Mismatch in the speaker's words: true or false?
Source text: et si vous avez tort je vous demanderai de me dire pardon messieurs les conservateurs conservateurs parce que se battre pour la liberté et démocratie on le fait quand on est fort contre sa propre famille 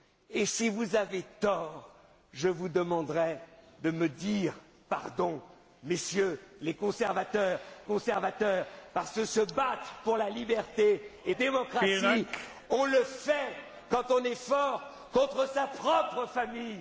false